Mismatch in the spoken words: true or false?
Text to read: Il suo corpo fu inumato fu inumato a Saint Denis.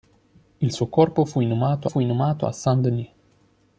false